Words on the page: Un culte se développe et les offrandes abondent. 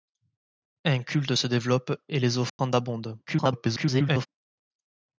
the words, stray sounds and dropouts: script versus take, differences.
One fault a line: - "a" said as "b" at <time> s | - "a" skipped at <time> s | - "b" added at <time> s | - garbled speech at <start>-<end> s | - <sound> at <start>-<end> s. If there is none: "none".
- dropout at 2.5-2.6 s
- garbled speech at 3.3-4.3 s